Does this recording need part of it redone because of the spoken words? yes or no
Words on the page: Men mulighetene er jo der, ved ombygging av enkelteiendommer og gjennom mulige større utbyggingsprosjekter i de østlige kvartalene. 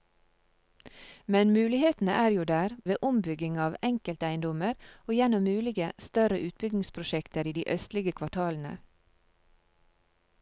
no